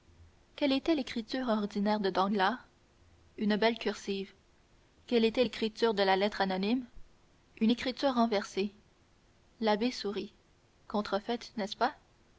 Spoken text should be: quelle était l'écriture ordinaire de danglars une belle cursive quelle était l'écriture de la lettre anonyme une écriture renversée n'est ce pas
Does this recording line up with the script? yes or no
no